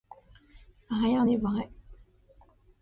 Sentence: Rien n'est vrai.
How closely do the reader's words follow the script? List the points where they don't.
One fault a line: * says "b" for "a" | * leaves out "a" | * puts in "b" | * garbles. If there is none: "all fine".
all fine